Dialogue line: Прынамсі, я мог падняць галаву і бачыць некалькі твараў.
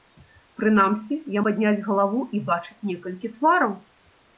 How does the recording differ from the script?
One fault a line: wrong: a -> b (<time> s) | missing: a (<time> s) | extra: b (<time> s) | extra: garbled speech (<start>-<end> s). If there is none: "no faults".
missing: мог (1.4 s)